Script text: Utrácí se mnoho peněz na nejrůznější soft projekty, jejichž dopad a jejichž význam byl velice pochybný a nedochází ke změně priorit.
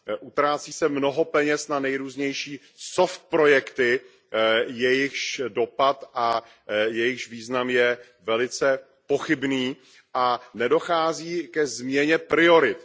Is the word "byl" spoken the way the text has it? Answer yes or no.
no